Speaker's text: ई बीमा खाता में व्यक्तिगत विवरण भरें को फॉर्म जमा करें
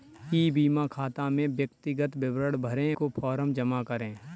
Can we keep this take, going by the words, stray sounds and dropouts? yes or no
yes